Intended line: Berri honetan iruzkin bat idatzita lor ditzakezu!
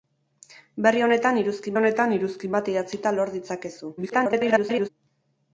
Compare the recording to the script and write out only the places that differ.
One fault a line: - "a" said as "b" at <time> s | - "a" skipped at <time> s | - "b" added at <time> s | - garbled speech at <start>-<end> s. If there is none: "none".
- "honetan iruzkin" added at 1.8 s
- garbled speech at 4.0-4.9 s